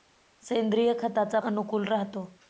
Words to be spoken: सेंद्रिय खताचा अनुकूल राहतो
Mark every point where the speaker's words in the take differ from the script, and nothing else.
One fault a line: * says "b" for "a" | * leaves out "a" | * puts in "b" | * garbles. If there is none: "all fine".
all fine